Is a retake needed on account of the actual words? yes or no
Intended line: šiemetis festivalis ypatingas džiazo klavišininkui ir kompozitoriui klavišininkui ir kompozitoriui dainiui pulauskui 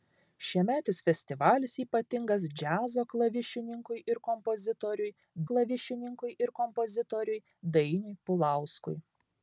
no